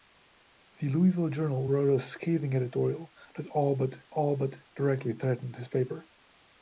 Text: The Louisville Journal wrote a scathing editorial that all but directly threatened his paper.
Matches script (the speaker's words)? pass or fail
fail